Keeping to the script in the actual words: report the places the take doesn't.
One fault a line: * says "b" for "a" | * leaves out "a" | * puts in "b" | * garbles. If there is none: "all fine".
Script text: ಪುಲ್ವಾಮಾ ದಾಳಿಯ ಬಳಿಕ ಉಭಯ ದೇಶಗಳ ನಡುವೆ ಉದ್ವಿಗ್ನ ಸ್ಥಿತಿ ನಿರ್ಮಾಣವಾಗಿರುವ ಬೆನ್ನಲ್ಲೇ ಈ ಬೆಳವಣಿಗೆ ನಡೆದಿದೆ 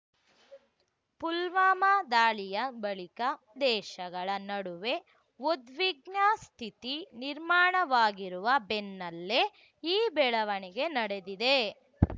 * leaves out "ಉಭಯ"